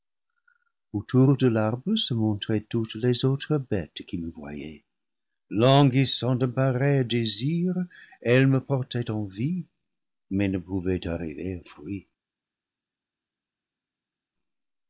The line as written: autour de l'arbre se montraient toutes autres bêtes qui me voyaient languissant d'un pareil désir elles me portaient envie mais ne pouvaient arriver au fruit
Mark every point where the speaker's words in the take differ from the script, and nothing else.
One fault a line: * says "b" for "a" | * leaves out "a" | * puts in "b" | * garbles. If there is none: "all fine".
* puts in "les"